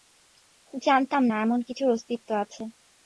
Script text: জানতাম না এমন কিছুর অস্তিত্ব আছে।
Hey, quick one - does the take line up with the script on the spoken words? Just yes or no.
yes